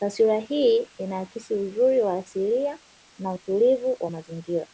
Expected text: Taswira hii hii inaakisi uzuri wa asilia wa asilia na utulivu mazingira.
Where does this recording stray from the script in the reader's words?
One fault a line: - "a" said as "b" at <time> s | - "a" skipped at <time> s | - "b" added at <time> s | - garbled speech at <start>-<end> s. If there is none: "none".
- "hii" skipped at 0.9 s
- "wa asilia" skipped at 2.8 s
- "wa" added at 4.0 s